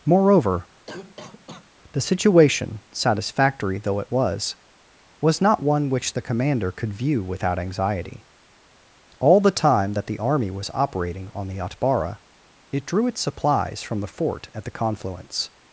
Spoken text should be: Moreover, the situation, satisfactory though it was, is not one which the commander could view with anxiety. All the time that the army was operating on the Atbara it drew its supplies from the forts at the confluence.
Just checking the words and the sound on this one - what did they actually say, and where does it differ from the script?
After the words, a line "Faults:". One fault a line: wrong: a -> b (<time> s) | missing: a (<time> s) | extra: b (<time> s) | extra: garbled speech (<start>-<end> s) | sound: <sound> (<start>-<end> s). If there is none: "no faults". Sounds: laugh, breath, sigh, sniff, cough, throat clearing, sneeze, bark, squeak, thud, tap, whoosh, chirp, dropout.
Moreover, the situation, satisfactory though it was, was not one which the commander could view without anxiety. All the time that the army was operating on the Atbara it drew its supplies from the fort at the confluence.
Faults:
sound: cough (0.8-1.7 s)
wrong: is -> was (5.2 s)
wrong: with -> without (7.2 s)
wrong: forts -> fort (14.1 s)